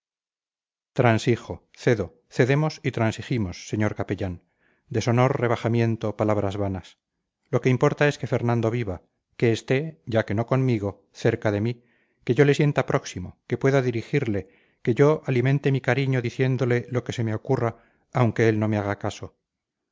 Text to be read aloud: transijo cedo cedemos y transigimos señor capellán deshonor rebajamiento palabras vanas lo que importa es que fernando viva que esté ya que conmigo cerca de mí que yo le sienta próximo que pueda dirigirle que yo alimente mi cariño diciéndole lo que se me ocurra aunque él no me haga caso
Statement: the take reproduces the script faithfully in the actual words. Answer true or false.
false